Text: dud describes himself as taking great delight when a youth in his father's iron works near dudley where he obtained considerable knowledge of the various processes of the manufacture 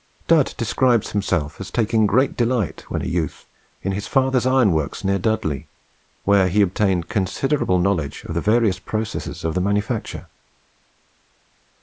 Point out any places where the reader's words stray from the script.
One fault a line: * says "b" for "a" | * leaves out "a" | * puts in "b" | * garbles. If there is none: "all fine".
all fine